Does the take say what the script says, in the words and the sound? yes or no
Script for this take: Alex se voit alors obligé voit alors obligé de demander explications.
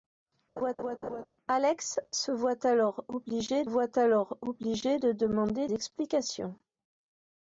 no